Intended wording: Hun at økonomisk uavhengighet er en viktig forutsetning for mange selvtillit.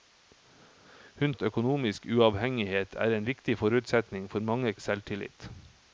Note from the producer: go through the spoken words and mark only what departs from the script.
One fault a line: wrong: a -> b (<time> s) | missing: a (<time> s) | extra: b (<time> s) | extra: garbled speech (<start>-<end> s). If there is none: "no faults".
no faults